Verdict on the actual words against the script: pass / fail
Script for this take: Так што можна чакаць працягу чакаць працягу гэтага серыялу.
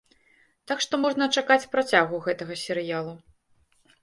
fail